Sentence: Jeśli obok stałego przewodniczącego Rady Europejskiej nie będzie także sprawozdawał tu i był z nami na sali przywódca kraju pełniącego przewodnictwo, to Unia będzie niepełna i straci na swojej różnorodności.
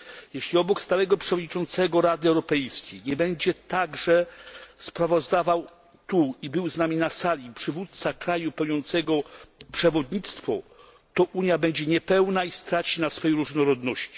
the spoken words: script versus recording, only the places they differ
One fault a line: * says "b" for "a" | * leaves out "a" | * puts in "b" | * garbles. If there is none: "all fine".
all fine